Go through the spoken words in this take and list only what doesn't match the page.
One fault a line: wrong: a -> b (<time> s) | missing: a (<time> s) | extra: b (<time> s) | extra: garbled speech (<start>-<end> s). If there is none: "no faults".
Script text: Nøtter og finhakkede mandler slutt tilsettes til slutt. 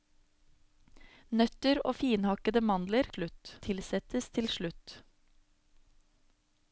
no faults